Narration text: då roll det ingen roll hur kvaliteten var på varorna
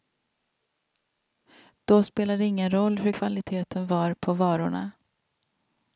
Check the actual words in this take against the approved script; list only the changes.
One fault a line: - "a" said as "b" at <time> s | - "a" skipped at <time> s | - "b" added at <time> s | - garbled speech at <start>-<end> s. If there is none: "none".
- "roll" said as "spelade" at 2.0 s